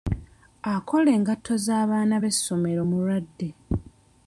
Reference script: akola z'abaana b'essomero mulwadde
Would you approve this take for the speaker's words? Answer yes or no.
no